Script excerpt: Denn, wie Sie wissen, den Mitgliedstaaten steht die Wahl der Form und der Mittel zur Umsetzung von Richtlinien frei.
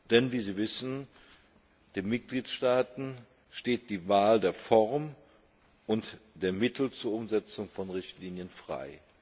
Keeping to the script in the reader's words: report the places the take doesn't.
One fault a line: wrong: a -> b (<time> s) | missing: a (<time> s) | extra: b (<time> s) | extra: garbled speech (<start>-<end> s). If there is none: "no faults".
no faults